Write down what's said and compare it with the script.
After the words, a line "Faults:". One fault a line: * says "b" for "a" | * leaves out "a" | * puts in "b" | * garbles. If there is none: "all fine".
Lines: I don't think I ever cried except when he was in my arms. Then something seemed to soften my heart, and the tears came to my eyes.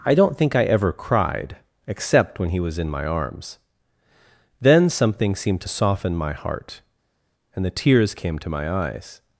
I don't think I ever cried except when he was in my arms. Then something seemed to soften my heart, and the tears came to my eyes.
Faults:
all fine